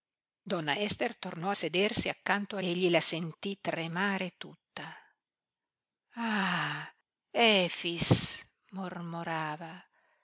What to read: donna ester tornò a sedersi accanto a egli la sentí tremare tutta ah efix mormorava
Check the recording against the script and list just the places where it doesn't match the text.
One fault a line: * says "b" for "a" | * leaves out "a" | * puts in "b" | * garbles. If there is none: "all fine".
all fine